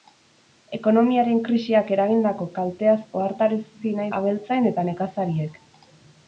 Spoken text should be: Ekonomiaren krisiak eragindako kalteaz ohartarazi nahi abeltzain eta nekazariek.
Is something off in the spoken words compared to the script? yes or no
no